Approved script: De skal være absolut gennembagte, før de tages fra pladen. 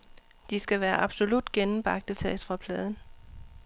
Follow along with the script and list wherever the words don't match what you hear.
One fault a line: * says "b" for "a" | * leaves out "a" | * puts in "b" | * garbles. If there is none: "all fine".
* leaves out "før de"